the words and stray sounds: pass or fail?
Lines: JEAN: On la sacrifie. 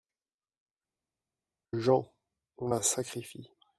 pass